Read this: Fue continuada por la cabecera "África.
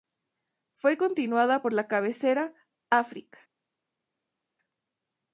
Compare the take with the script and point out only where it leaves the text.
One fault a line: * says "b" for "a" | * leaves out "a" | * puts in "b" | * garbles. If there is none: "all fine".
all fine